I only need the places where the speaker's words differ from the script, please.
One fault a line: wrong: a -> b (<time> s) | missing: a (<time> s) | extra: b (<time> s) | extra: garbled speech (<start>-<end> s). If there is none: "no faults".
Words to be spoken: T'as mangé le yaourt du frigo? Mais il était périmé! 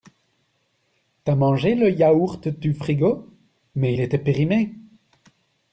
no faults